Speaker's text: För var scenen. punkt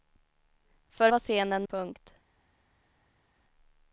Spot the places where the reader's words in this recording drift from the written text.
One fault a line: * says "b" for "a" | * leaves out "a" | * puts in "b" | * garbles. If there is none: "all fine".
all fine